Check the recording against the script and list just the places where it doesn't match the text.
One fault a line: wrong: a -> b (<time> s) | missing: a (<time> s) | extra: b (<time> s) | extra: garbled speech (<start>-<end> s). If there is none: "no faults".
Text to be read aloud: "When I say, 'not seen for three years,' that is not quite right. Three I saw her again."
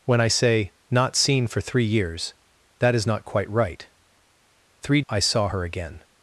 no faults